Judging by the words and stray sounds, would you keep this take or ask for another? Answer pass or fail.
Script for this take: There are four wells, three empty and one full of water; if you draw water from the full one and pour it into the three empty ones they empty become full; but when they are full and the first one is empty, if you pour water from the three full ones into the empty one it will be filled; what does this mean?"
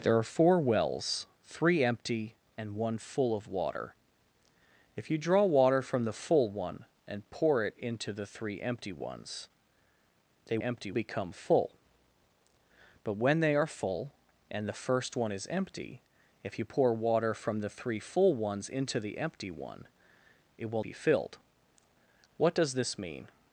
pass